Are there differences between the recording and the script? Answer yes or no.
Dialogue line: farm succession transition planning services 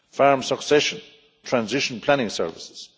no